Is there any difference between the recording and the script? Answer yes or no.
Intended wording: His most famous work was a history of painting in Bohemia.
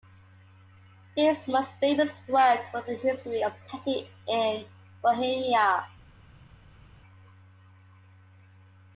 no